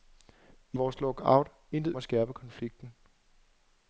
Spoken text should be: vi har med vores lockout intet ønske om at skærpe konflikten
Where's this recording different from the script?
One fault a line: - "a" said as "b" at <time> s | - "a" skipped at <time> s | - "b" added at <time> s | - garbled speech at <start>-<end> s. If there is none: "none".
- "har med" skipped at 0.8 s
- "ønske om" skipped at 1.9 s